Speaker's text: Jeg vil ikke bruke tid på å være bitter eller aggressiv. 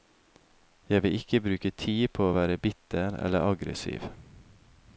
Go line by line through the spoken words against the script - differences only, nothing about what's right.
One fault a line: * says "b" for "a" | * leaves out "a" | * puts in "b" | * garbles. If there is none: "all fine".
all fine